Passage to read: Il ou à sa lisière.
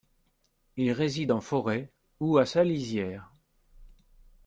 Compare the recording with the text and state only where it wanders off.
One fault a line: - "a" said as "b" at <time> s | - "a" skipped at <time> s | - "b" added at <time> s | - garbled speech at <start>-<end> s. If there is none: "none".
- "réside en forêt" added at 0.9 s